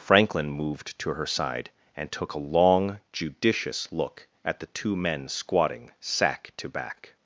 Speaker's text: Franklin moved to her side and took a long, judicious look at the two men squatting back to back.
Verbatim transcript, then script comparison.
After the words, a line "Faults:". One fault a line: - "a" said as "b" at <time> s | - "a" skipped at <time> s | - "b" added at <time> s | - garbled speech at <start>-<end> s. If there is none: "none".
Franklin moved to her side and took a long, judicious look at the two men squatting sack to back.
Faults:
- "back" said as "sack" at 6.0 s